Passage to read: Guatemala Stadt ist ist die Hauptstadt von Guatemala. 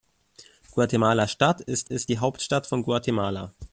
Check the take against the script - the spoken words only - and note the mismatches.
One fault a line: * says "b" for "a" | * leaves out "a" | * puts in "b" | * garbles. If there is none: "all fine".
all fine